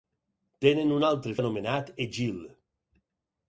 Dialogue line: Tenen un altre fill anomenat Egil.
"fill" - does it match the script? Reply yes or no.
no